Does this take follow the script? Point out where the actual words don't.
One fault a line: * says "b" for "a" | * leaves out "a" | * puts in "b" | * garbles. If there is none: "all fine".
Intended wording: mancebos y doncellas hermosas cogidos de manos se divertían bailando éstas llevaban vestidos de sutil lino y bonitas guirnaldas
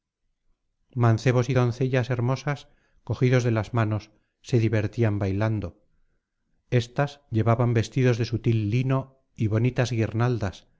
* puts in "las"